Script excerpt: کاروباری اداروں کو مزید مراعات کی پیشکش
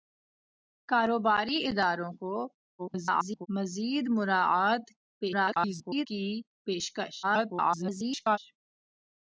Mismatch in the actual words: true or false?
true